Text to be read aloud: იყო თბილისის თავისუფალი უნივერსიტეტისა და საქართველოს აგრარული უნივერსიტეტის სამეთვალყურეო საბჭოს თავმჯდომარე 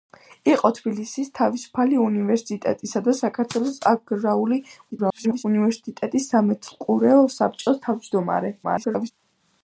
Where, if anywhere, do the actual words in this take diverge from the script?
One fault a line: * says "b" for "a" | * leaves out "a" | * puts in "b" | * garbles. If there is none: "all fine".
* garbles
* garbles